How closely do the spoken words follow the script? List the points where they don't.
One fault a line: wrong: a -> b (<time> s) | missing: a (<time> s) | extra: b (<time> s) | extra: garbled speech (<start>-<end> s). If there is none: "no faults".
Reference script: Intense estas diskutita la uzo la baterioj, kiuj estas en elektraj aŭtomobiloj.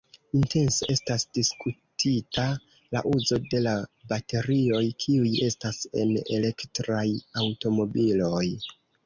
extra: de (3.5 s)